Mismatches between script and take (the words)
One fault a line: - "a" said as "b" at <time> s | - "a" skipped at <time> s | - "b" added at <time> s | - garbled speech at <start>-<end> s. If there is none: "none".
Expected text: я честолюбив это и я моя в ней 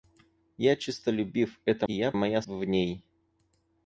none